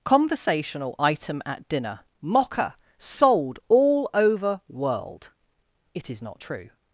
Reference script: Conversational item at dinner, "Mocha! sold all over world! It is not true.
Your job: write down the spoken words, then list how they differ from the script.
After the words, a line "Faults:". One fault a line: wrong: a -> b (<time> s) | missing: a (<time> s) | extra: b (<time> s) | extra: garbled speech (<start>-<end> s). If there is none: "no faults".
Conversational item at dinner, "Mocha! sold all over world! It is not true.
Faults:
no faults